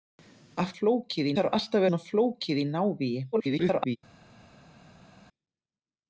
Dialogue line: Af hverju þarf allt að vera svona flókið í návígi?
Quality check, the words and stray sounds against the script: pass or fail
fail